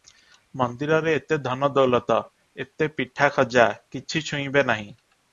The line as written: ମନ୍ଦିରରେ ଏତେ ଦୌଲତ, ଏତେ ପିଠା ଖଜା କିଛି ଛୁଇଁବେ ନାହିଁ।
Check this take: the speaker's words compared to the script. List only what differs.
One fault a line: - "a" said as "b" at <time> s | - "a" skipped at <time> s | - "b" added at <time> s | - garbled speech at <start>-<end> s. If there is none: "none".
- "ଧନ" added at 1.4 s